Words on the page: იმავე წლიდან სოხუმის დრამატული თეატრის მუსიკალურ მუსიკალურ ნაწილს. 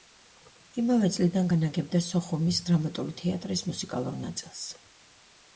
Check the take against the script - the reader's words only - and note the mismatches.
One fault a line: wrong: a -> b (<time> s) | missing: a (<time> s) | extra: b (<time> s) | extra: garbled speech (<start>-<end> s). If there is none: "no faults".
extra: განაგებდა (1.5 s)
missing: მუსიკალურ (4.2 s)